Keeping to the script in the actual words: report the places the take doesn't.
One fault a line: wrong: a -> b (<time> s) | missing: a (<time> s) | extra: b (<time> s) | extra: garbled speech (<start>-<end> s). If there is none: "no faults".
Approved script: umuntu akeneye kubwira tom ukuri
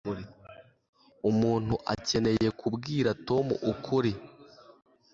no faults